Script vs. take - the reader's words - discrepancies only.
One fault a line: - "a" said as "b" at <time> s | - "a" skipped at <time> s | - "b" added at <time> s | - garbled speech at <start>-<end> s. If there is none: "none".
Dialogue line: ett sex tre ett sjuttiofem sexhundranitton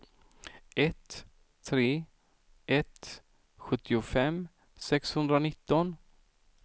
- "sex" skipped at 1.2 s